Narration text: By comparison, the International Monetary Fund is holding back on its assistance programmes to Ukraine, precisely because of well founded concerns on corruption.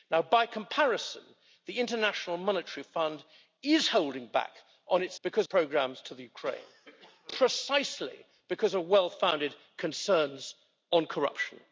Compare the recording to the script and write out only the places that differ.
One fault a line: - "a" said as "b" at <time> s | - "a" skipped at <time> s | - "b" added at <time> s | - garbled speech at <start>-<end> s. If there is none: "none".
- "assistance" said as "because" at 5.2 s